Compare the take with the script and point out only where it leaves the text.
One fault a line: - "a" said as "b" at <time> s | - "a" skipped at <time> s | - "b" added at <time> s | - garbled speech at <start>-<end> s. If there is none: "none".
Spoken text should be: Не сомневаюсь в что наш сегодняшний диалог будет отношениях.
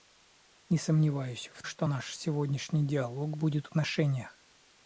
none